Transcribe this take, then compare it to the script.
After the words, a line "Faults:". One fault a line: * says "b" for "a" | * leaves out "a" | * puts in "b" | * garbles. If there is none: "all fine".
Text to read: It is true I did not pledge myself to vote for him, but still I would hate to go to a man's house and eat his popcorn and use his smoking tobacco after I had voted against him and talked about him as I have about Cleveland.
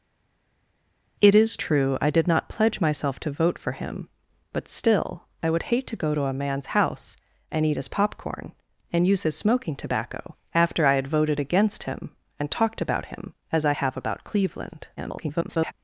It is true I did not pledge myself to vote for him, but still I would hate to go to a man's house and eat his popcorn and use his smoking tobacco after I had voted against him and talked about him as I have about Cleveland. [garbled]
Faults:
* garbles